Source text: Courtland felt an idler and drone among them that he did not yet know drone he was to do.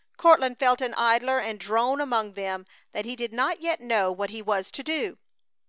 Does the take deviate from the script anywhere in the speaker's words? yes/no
yes